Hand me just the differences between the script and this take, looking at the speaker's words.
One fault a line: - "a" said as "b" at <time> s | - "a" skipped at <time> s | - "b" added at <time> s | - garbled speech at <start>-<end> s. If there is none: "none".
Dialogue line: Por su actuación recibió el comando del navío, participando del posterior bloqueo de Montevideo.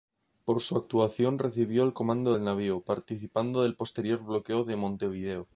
none